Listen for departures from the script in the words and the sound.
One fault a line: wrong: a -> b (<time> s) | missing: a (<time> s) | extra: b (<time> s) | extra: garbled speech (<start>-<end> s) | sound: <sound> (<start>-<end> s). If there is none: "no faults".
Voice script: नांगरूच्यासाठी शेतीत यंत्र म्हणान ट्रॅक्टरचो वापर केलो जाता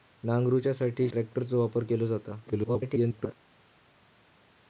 missing: शेतीत यंत्र म्हणान (1.1 s)
extra: garbled speech (2.5-3.4 s)